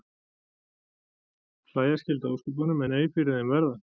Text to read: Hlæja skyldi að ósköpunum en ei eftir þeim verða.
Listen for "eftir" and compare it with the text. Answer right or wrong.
wrong